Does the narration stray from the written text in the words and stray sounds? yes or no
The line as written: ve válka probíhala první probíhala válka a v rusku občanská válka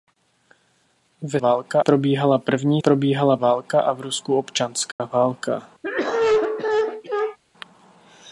yes